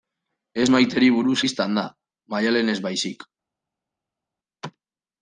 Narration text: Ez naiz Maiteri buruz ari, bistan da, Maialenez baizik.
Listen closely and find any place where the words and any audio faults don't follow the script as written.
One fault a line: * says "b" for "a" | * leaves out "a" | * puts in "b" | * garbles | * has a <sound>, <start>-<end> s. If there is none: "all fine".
* leaves out "naiz"
* leaves out "ari"